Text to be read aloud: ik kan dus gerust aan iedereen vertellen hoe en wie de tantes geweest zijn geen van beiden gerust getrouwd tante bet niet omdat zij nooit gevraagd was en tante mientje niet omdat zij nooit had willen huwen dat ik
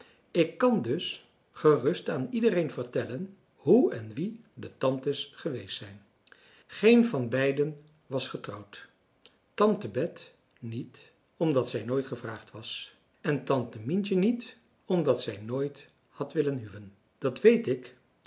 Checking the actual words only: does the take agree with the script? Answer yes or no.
no